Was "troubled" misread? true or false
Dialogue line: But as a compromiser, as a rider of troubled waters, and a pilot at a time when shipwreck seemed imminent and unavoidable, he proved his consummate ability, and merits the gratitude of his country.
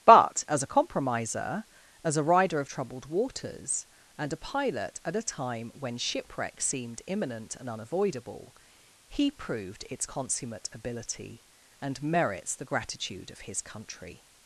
false